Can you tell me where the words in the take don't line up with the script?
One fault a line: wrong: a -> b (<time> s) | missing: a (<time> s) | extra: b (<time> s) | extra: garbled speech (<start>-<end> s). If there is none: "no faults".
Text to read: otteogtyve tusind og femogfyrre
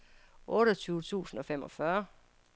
no faults